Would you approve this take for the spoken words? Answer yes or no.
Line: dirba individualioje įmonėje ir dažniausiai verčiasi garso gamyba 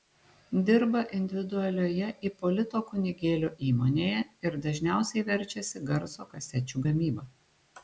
no